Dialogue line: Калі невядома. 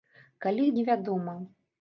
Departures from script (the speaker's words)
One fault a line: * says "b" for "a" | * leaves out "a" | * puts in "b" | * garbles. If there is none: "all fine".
all fine